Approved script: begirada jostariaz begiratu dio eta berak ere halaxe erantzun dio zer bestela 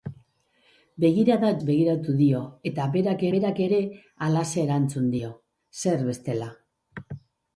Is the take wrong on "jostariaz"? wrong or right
wrong